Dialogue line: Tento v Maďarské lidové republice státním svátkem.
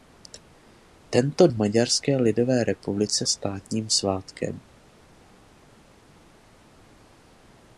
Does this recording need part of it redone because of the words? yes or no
no